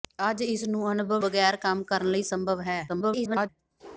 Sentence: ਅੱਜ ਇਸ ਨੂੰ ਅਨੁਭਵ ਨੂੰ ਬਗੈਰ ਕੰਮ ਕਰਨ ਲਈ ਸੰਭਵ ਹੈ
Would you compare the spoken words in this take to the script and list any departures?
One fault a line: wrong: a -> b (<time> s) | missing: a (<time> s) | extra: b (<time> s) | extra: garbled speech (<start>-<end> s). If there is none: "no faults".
missing: ਨੂੰ (1.2 s)
extra: garbled speech (2.9-3.5 s)